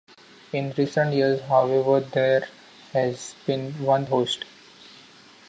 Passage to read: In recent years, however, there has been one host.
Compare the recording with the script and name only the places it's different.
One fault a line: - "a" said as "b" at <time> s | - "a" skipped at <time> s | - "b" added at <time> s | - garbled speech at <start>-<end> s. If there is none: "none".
none